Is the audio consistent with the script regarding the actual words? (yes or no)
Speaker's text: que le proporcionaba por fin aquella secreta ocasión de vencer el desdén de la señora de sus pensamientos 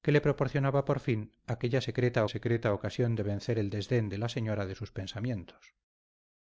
no